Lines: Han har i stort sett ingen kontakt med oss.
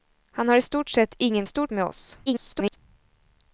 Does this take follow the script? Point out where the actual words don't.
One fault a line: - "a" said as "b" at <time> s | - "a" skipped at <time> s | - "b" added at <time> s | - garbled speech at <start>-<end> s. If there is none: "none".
- "kontakt" said as "stort" at 1.4 s
- garbled speech at 2.3-2.8 s